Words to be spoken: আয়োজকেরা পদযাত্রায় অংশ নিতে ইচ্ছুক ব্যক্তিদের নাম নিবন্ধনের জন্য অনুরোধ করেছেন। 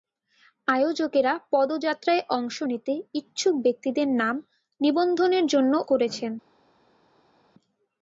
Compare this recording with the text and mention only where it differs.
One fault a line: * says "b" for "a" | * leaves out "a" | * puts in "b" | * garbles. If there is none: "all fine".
* leaves out "অনুরোধ"